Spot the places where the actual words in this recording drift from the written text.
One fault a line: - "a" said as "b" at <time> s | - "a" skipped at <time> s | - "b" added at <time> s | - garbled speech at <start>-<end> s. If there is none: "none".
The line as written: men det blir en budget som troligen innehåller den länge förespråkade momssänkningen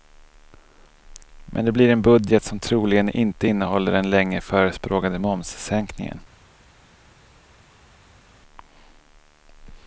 - "inte" added at 3.1 s